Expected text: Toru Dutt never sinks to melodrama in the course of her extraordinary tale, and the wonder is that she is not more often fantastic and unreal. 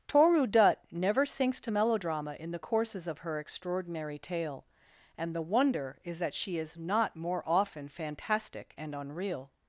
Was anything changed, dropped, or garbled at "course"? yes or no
yes